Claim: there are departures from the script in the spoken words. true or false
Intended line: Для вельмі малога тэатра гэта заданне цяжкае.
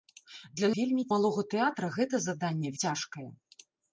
false